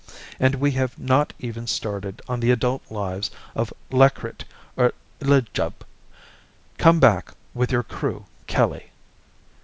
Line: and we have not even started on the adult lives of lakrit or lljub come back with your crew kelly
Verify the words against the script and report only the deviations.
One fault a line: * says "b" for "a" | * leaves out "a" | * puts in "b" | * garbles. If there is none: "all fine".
all fine